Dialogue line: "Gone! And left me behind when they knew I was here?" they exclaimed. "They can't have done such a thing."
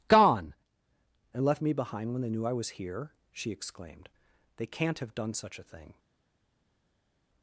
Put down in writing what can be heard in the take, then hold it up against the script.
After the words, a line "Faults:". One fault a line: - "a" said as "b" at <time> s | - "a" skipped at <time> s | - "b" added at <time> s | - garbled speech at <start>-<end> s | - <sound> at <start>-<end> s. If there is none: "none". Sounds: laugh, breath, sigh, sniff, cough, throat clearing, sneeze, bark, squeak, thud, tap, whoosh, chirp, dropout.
"Gone! And left me behind when they knew I was here?" she exclaimed. "They can't have done such a thing."
Faults:
- "they" said as "she" at 3.3 s